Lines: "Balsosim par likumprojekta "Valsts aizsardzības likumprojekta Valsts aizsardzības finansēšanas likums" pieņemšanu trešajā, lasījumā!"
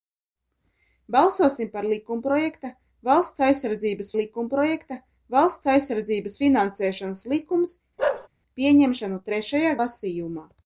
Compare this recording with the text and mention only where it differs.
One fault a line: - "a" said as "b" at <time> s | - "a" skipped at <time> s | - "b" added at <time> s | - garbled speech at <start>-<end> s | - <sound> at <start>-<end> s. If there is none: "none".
- bark at 8.0-8.3 s